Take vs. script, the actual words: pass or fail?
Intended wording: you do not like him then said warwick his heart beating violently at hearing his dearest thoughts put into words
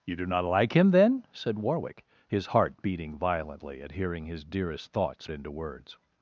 fail